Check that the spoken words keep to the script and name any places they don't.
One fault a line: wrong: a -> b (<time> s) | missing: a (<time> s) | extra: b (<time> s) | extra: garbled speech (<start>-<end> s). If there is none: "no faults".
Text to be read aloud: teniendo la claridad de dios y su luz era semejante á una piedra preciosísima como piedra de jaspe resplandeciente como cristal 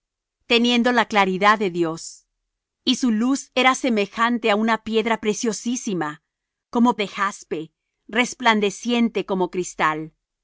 missing: piedra (7.0 s)